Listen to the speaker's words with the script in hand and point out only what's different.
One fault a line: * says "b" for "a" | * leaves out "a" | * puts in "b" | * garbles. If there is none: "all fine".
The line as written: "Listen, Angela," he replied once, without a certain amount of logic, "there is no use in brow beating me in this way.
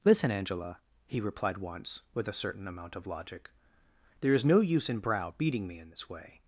* says "with" for "without"